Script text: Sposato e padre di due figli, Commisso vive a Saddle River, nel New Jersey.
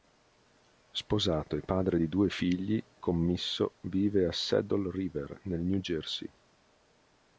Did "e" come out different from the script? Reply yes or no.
no